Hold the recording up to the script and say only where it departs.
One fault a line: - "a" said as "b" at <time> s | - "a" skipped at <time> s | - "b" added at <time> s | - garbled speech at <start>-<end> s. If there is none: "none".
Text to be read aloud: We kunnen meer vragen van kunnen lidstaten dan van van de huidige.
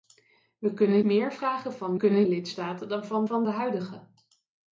none